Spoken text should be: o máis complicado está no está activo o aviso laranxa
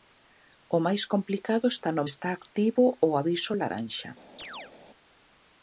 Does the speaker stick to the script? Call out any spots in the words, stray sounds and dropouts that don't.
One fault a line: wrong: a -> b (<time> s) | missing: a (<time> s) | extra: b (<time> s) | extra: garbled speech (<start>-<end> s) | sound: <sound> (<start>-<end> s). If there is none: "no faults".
sound: chirp (4.4-4.7 s)